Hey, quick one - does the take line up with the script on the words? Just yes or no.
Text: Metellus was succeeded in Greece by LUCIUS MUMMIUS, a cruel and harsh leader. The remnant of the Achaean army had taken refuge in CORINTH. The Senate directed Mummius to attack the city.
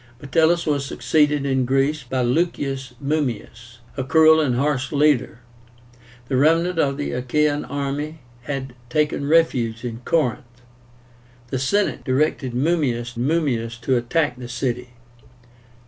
no